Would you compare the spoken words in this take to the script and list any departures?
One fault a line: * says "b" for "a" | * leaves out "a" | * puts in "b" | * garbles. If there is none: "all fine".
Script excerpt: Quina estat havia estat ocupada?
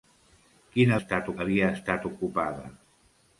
all fine